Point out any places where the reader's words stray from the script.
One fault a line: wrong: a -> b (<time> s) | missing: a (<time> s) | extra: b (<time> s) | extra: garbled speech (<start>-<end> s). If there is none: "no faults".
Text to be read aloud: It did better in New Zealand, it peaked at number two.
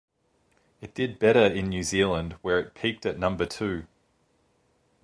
extra: where (2.4 s)